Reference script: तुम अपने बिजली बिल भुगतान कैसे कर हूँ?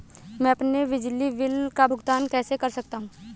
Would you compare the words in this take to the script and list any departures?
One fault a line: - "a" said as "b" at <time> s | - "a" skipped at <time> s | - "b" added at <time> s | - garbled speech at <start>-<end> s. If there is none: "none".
- "तुम" said as "मैं" at 0.4 s
- "का" added at 1.8 s
- "सकता" added at 2.7 s